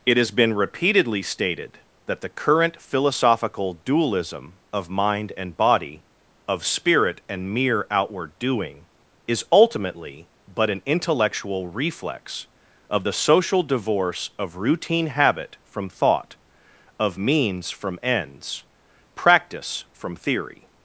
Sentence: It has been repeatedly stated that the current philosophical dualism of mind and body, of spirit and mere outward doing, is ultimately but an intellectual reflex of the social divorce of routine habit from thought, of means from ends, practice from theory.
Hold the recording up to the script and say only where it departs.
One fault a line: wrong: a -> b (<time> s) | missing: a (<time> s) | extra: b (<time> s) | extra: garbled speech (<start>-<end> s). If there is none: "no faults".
no faults